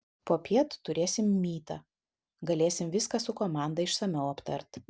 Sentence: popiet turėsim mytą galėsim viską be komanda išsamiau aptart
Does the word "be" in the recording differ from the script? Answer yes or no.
yes